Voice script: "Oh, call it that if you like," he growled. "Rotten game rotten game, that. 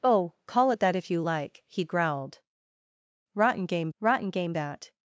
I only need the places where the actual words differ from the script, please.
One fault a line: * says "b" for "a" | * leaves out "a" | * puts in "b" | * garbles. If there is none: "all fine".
all fine